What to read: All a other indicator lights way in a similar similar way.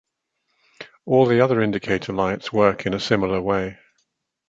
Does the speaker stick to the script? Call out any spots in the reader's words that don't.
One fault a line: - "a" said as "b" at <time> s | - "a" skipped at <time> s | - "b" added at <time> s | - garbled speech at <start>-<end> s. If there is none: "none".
- "a" said as "the" at 1.3 s
- "way" said as "work" at 2.5 s
- "similar" skipped at 3.4 s